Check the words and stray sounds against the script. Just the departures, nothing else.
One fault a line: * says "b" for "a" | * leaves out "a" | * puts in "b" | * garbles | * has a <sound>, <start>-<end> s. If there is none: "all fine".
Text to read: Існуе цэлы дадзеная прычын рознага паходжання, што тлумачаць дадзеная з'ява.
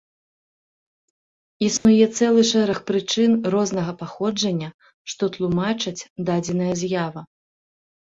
* has a dropout, 1.8-1.9 s
* says "шэраг" for "дадзеная"